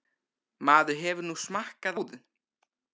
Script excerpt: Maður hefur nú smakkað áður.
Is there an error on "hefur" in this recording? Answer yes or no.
no